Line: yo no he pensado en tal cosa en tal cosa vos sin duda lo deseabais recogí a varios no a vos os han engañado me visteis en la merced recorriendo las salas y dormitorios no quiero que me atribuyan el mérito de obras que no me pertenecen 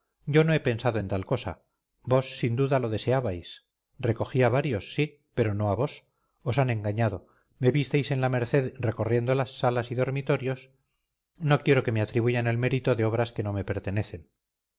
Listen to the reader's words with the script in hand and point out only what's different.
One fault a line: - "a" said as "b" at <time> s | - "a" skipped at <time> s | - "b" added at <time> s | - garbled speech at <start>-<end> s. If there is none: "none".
- "en tal cosa" skipped at 1.6 s
- "sí pero" added at 4.9 s